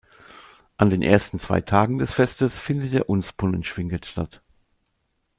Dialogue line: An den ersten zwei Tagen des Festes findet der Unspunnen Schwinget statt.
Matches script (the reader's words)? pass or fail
pass